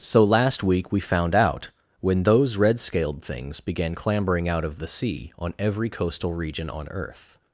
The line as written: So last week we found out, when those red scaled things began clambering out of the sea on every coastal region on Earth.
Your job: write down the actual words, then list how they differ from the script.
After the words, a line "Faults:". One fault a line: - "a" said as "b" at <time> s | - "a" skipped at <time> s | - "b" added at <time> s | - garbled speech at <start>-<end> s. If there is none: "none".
So last week we found out, when those red scaled things began clambering out of the sea on every coastal region on Earth.
Faults:
none